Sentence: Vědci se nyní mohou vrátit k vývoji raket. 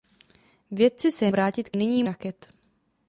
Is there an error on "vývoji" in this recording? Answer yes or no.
yes